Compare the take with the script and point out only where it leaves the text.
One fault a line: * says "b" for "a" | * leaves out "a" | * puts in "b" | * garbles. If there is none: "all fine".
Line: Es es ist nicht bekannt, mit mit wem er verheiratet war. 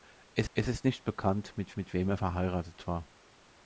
all fine